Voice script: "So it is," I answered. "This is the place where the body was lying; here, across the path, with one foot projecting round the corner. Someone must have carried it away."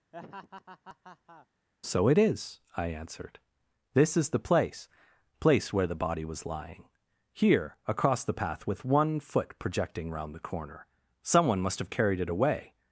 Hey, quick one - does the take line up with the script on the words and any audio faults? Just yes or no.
no